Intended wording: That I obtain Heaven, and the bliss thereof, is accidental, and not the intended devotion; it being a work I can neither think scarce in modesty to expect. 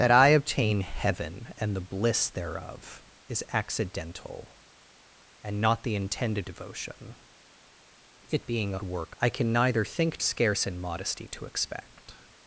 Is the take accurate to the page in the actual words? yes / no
yes